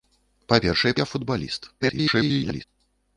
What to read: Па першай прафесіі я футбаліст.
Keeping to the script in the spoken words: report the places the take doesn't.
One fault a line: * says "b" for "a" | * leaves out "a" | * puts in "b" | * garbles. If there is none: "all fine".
* leaves out "прафесіі"
* garbles